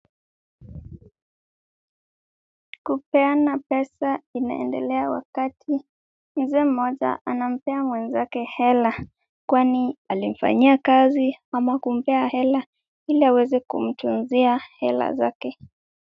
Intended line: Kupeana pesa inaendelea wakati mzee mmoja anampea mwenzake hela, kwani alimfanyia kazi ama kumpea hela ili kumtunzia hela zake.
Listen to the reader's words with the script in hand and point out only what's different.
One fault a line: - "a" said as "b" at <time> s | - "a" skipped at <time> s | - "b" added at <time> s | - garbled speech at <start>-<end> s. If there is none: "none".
- "aweze" added at 13.2 s